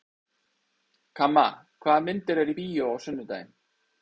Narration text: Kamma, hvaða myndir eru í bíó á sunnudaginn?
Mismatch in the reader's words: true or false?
false